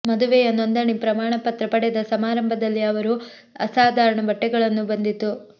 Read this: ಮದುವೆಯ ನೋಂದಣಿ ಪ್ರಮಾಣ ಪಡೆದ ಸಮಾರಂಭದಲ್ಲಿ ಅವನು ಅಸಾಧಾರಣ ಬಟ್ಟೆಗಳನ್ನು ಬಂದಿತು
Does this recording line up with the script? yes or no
no